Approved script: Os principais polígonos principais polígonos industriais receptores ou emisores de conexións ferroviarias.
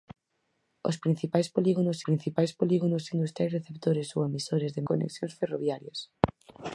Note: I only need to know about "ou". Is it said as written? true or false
true